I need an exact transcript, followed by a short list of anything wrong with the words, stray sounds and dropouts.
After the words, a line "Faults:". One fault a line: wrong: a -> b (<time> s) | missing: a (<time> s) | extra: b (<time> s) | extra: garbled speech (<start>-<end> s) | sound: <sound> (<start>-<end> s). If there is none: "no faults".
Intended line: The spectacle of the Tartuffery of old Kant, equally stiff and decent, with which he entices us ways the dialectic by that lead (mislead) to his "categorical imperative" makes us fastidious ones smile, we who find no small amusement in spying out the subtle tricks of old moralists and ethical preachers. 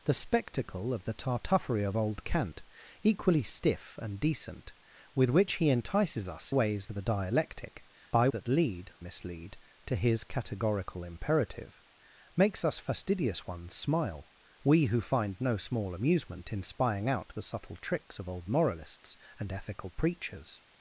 The spectacle of the Tartuffery of old Kant, equally stiff and decent, with which he entices us ways the dialectic by that lead (mislead) to his "categorical imperative" makes us fastidious ones smile, we who find no small amusement in spying out the subtle tricks of old moralists and ethical preachers.
Faults:
no faults